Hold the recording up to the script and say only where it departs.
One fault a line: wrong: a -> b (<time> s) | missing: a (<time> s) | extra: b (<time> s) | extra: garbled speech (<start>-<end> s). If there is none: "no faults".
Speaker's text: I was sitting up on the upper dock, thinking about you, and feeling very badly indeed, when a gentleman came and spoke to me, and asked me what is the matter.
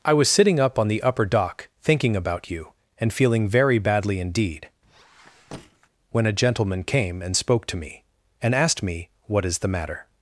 no faults